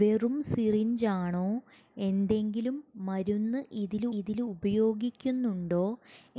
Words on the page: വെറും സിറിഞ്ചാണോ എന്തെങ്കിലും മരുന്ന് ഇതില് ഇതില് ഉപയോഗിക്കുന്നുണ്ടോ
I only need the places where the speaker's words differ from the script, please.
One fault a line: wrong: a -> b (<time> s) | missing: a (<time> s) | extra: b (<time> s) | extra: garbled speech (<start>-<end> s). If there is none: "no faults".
no faults